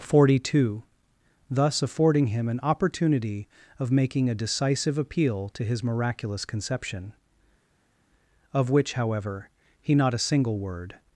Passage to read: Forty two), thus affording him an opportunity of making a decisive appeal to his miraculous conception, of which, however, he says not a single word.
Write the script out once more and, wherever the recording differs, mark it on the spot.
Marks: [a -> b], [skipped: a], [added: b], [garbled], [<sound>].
Forty two), thus affording him an opportunity of making a decisive appeal to his miraculous conception, of which, however, he [skipped: says] not a single word.